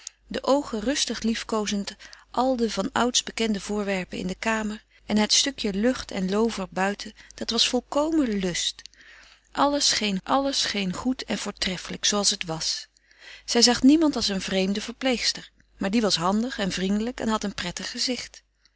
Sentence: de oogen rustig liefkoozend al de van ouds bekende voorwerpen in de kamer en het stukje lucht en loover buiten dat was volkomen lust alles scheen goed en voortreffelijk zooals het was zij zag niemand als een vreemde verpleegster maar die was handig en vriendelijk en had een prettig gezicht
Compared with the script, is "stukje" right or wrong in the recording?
right